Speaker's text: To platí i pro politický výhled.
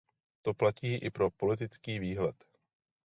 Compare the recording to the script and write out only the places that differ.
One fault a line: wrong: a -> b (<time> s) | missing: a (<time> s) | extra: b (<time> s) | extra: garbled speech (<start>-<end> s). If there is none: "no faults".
no faults